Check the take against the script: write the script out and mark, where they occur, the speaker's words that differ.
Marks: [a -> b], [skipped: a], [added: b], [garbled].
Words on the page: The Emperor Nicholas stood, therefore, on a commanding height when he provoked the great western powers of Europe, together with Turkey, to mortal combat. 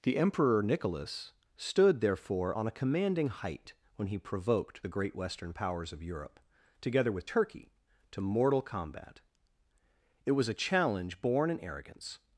The Emperor Nicholas stood, therefore, on a commanding height when he provoked the great western powers of Europe, together with Turkey, to mortal combat. [added: It was a challenge born in arrogance]